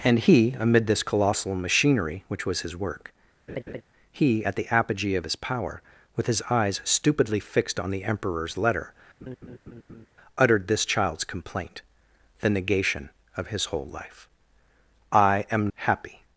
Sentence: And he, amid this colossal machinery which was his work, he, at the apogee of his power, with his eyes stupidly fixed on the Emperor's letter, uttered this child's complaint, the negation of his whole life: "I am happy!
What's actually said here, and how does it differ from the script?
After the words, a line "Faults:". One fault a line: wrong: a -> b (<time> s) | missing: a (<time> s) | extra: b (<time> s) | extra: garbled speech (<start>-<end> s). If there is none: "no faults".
And he, amid this colossal machinery which was his work, he, at the apogee of his power, with his eyes stupidly fixed on the Emperor's letter, uttered this child's complaint, the negation of his whole life: "I am happy!
Faults:
no faults